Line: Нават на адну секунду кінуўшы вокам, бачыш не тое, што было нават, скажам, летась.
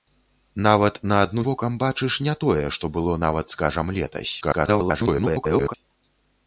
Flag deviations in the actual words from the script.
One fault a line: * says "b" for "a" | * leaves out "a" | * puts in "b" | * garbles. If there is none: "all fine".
* leaves out "секунду кінуўшы"
* garbles